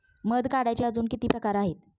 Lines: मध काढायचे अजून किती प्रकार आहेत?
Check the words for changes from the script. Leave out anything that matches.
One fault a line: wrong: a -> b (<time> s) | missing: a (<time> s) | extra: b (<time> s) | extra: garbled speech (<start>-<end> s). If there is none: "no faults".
no faults